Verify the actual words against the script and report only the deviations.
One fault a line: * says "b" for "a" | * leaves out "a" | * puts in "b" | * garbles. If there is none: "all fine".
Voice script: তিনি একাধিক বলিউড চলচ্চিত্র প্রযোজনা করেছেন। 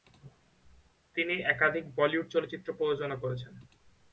all fine